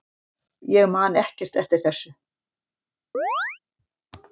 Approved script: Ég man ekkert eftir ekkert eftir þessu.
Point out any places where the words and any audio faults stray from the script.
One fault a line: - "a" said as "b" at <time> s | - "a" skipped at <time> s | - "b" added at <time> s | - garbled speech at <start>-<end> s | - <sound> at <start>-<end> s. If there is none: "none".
- "ekkert eftir" skipped at 1.9 s
- chirp at 3.1-3.6 s